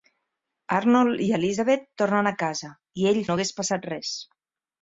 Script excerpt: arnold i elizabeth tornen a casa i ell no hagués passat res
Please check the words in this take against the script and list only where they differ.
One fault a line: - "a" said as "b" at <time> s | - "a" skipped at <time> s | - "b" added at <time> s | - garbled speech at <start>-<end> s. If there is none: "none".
none